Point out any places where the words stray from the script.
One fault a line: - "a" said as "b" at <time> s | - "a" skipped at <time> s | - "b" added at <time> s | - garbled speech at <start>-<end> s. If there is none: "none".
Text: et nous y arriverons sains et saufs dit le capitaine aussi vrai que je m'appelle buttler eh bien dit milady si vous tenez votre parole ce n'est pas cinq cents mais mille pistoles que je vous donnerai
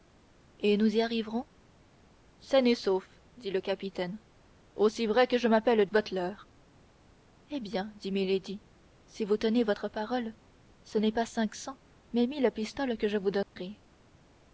none